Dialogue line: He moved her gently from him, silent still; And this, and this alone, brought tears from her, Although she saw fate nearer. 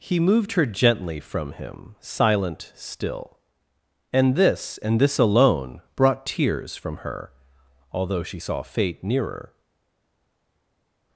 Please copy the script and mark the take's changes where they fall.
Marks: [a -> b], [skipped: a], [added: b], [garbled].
He moved her gently from him, silent still; And this, and this alone, brought tears from her, Although she saw fate nearer.